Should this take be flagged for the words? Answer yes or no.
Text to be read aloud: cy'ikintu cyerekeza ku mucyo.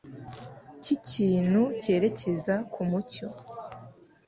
no